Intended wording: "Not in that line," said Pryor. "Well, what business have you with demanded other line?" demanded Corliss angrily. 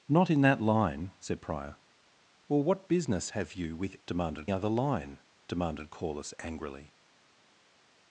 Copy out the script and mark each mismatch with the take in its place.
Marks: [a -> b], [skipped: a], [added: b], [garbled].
"Not in that line," said Pryor. "Well, what business have you with demanded other line?" demanded Corliss angrily.